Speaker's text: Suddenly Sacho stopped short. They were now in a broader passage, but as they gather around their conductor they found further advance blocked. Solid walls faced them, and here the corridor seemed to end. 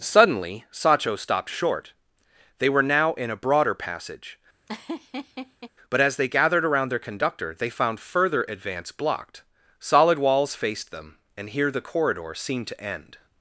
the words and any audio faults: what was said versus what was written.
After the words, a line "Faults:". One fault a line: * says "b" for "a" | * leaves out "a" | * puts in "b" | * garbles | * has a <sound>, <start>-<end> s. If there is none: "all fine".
Suddenly Sacho stopped short. They were now in a broader passage, but as they gathered around their conductor they found further advance blocked. Solid walls faced them, and here the corridor seemed to end.
Faults:
* has a laugh, 4.7-5.7 s
* says "gathered" for "gather"